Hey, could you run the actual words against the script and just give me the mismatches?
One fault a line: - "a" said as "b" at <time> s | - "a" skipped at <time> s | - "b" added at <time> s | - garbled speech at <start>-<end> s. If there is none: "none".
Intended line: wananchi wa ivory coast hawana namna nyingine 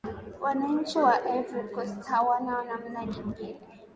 none